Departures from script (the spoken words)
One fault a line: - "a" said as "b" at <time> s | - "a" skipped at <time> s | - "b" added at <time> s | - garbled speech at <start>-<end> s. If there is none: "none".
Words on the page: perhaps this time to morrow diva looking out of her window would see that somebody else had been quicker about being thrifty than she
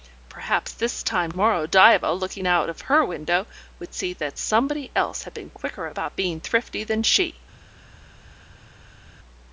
- "to" skipped at 1.3 s